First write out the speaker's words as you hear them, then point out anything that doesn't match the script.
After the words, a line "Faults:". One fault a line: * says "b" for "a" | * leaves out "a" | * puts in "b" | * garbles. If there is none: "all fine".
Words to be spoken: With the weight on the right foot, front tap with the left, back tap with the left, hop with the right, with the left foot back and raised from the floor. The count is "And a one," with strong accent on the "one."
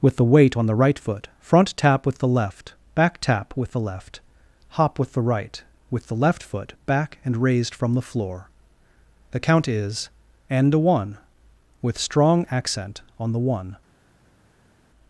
With the weight on the right foot, front tap with the left, back tap with the left, hop with the right, with the left foot back and raised from the floor. The count is "And a one," with strong accent on the "one."
Faults:
all fine